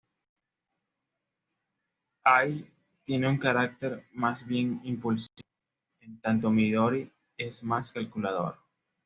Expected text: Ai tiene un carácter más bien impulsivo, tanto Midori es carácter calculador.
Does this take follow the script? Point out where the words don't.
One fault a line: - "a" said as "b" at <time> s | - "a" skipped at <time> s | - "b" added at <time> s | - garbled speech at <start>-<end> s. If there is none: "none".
- "en" added at 6.0 s
- "carácter" said as "más" at 7.6 s